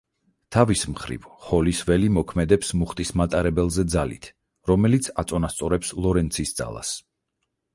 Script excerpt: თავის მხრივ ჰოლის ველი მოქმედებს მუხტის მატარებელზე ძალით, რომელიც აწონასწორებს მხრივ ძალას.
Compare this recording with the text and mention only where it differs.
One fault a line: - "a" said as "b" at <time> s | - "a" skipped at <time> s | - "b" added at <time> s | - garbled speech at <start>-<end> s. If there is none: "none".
- "მხრივ" said as "ლორენცის" at 6.1 s